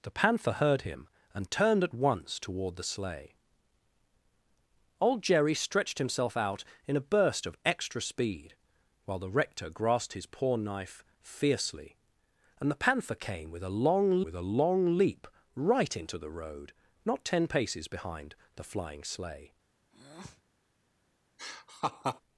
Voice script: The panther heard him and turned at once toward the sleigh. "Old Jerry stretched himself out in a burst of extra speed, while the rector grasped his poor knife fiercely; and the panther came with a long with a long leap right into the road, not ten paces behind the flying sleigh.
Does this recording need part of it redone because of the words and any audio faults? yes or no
yes